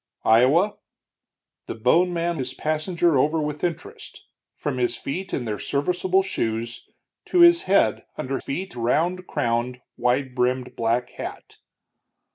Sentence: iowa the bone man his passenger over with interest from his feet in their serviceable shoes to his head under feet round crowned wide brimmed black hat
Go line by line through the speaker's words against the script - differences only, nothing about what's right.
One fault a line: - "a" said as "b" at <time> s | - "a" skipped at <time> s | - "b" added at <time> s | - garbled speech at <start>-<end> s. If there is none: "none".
none